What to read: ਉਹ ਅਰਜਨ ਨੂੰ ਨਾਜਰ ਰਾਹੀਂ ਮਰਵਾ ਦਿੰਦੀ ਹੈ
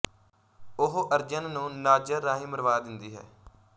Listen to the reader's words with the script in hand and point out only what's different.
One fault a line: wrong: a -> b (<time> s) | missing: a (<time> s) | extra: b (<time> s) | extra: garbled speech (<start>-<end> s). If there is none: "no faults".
no faults